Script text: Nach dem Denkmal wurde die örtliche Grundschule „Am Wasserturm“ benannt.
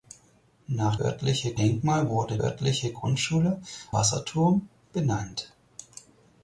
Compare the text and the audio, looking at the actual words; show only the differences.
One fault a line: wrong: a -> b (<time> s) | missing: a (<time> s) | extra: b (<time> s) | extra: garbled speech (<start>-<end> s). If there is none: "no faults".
wrong: dem -> örtliche (1.0 s)
missing: die (2.4 s)
missing: Am (3.6 s)